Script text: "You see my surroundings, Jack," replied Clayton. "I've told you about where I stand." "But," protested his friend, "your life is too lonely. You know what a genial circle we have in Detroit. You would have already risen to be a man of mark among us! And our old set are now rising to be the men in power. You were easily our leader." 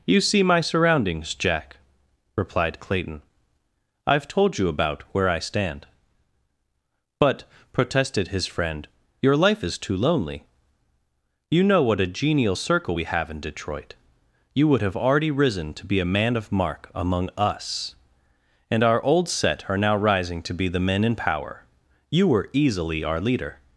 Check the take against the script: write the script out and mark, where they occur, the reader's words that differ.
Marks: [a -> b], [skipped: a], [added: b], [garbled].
"You see my surroundings, Jack," replied Clayton. "I've told you about where I stand." "But," protested his friend, "your life is too lonely. You know what a genial circle we have in Detroit. You would have already risen to be a man of mark among us! And our old set are now rising to be the men in power. You were easily our leader."